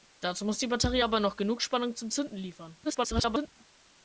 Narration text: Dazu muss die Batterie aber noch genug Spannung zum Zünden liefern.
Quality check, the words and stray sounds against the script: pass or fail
fail